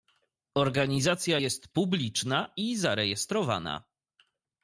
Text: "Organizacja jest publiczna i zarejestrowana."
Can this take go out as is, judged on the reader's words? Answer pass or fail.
pass